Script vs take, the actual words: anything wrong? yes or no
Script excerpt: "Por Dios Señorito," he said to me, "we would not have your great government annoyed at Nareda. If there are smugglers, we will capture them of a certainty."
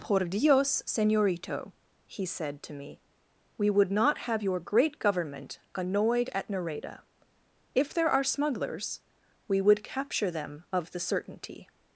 yes